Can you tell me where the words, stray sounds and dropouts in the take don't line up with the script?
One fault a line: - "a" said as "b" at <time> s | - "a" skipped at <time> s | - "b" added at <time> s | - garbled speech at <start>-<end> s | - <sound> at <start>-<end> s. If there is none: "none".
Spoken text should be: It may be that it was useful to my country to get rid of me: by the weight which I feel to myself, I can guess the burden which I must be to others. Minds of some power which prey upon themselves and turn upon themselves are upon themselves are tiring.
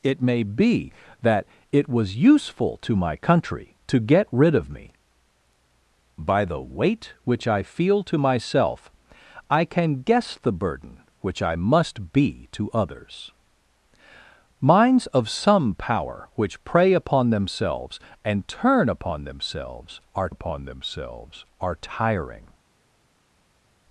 none